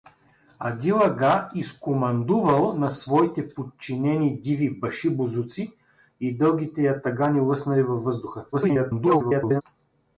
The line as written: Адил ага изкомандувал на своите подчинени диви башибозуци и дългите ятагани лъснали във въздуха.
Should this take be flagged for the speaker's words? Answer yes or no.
yes